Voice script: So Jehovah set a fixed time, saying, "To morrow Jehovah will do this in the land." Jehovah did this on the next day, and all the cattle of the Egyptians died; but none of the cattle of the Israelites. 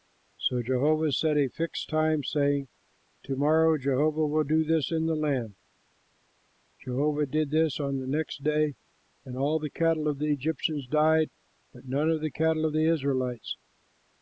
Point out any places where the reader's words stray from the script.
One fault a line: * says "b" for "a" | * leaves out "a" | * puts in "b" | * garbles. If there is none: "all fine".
all fine